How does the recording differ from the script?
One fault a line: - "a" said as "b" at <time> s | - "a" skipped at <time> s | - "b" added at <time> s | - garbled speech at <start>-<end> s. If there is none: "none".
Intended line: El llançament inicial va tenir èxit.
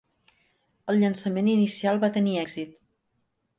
none